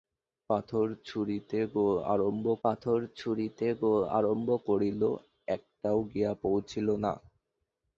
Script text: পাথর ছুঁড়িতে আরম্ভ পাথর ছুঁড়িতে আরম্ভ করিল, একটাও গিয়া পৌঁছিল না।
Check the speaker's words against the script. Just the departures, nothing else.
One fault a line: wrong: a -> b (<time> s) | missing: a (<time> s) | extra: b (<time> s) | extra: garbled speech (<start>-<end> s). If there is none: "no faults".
no faults